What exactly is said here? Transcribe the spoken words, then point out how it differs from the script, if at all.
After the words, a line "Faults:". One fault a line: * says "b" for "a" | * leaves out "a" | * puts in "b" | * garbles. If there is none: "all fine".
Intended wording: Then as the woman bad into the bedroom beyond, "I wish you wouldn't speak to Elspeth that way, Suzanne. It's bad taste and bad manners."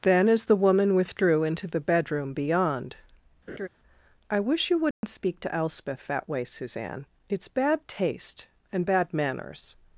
Then as the woman withdrew into the bedroom beyond, "I wish you wouldn't speak to Elspeth that way, Suzanne. It's bad taste and bad manners."
Faults:
* says "withdrew" for "bad"